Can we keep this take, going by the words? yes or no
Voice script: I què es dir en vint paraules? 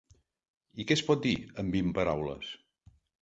no